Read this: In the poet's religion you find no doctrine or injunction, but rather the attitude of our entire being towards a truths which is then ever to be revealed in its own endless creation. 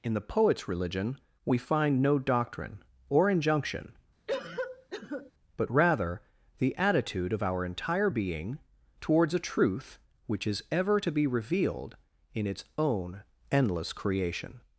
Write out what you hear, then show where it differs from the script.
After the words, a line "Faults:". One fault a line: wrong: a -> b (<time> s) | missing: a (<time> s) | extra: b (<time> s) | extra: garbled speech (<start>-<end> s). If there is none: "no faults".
In the poet's religion we find no doctrine or injunction, but rather the attitude of our entire being towards a truth which is ever to be revealed in its own endless creation.
Faults:
wrong: you -> we (1.4 s)
wrong: truths -> truth (9.4 s)
missing: then (10.6 s)